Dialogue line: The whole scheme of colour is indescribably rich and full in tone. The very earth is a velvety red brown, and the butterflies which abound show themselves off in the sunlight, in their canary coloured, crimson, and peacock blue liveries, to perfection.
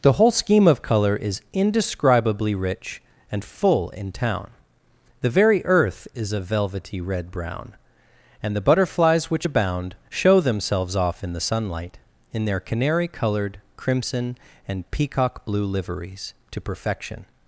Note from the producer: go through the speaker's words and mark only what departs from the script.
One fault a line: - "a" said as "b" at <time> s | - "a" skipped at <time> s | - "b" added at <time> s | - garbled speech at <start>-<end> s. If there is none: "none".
- "tone" said as "town" at 4.1 s